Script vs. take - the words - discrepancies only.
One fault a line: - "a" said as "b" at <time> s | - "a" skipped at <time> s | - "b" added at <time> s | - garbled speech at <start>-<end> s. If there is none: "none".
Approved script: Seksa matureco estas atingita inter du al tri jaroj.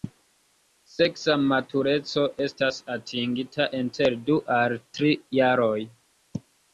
none